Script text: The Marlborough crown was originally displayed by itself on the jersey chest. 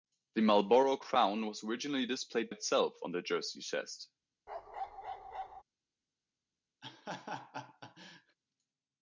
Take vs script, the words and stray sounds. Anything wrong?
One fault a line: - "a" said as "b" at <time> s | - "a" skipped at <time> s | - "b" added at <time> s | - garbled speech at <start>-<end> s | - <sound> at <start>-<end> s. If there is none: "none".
- "by" skipped at 2.5 s
- bark at 4.5-5.6 s
- laugh at 6.8-8.4 s